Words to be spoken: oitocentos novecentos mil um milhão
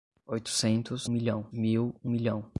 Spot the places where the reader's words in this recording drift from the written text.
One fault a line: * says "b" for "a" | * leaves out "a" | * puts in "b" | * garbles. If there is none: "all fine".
* says "milhão" for "novecentos"